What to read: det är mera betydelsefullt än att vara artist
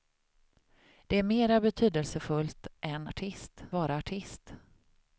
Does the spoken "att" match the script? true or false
false